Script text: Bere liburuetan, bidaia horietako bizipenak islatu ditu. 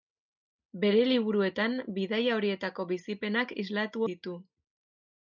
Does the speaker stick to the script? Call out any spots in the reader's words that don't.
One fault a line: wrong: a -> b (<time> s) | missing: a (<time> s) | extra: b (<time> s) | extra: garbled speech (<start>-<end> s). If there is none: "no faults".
no faults